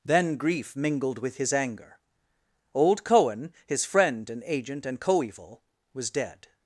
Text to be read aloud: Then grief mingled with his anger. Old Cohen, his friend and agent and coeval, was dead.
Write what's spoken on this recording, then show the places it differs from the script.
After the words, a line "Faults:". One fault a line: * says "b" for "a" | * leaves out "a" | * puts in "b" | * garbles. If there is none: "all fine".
Then grief mingled with his anger. Old Cohen, his friend and agent and coeval, was dead.
Faults:
all fine